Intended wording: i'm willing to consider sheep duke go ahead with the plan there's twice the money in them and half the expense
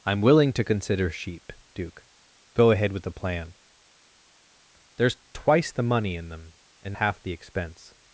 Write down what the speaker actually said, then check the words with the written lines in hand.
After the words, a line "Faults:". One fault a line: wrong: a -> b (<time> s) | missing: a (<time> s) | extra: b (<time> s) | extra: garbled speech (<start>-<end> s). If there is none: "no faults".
i'm willing to consider sheep duke go ahead with the plan there's twice the money in them and half the expense
Faults:
no faults